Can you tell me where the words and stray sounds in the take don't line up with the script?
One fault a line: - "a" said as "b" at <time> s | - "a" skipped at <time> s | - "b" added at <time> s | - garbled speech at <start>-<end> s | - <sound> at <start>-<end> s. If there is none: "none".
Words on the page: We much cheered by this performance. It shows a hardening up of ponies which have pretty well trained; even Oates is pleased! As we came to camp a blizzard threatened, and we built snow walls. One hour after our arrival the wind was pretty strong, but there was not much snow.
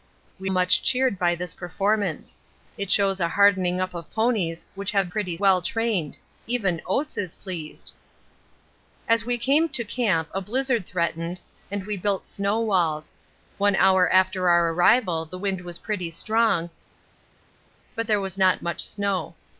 none